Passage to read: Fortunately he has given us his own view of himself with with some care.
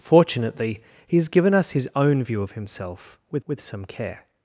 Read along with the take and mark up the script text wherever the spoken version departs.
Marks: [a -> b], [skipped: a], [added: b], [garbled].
Fortunately he has given us his own view of himself with with some care.